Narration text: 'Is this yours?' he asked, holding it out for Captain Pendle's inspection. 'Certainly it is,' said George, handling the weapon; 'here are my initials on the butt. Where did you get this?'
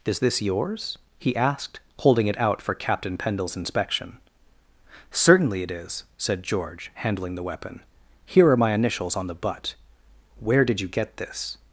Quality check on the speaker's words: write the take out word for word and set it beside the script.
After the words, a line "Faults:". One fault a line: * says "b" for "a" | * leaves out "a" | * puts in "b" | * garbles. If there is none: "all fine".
'Is this yours?' he asked, holding it out for Captain Pendle's inspection. 'Certainly it is,' said George, handling the weapon; 'here are my initials on the butt. Where did you get this?'
Faults:
all fine